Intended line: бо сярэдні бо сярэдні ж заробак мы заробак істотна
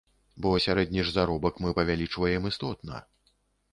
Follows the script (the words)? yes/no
no